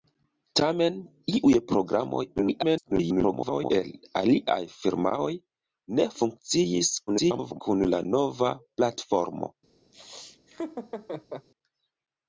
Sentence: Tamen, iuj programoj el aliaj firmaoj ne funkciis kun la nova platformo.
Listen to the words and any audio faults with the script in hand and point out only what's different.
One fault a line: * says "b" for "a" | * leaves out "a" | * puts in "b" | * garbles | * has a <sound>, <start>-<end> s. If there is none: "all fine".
* garbles
* garbles
* has a laugh, 9.9-11.5 s